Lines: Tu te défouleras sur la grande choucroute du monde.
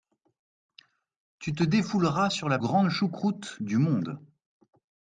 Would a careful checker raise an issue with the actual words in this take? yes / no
no